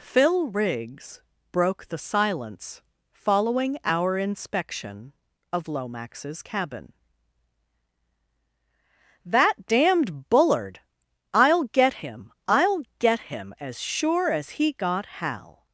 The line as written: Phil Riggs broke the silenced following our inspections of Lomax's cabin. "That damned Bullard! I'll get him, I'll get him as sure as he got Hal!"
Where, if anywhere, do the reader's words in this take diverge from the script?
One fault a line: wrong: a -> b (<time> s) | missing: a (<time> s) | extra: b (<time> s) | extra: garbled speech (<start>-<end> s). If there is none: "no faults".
wrong: silenced -> silence (2.0 s)
wrong: inspections -> inspection (4.2 s)